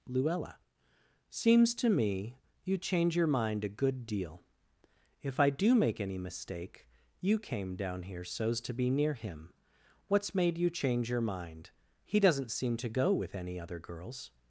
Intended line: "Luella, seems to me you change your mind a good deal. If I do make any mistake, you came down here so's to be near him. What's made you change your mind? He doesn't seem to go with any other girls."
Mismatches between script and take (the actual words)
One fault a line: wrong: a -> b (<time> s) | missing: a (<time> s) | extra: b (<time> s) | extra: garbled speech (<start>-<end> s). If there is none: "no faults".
no faults